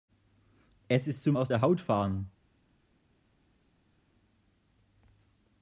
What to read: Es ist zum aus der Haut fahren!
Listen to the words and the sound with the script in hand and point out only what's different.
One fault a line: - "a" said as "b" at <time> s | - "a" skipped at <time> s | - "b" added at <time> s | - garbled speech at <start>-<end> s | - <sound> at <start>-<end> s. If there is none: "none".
none